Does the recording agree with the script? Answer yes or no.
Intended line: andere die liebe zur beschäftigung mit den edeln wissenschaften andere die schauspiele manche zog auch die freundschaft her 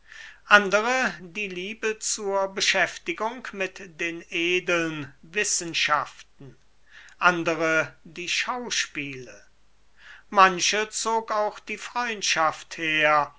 yes